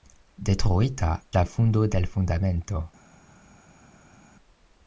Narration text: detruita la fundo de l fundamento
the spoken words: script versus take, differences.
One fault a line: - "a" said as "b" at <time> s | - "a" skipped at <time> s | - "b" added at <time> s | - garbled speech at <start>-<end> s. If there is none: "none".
none